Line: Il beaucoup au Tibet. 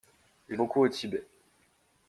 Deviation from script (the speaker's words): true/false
false